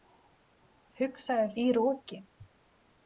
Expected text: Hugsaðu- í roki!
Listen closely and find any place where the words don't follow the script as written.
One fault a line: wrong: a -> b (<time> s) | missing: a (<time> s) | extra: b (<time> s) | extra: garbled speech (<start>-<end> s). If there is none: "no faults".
no faults